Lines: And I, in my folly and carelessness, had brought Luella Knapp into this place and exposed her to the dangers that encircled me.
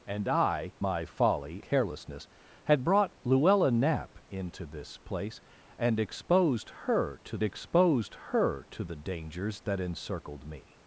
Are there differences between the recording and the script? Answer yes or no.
yes